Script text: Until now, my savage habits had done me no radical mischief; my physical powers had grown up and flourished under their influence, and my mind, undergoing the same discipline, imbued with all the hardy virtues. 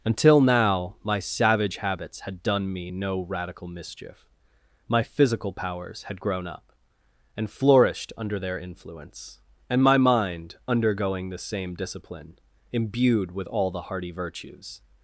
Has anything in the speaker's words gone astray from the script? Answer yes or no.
no